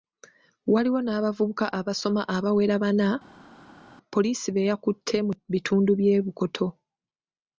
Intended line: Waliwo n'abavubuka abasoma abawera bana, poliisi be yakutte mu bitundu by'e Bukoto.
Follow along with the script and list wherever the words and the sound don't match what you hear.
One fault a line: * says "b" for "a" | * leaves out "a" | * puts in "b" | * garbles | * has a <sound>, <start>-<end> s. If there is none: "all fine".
all fine